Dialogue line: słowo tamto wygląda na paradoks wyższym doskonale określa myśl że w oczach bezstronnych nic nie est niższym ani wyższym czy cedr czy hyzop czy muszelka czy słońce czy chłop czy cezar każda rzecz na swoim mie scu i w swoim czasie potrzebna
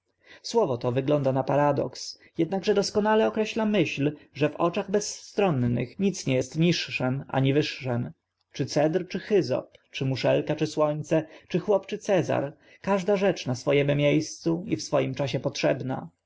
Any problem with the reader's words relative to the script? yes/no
yes